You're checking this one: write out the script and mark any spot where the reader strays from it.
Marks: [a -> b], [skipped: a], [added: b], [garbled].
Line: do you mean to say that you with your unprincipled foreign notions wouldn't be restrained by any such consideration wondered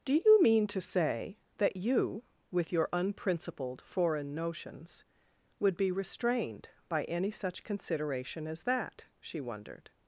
do you mean to say that you with your unprincipled foreign notions [wouldn't -> would] be restrained by any such consideration [added: as that she] wondered